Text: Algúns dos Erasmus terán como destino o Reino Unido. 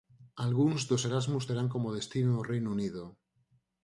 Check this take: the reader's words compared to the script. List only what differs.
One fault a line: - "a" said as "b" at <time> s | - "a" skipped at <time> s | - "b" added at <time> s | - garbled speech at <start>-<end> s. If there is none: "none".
none